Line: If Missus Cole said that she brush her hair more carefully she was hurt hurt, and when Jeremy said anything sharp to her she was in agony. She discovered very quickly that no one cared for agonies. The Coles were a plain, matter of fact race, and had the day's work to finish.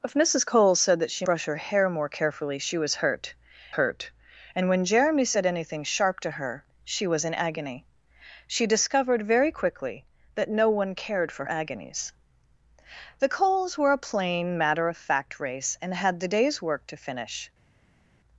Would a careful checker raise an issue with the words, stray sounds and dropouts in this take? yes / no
no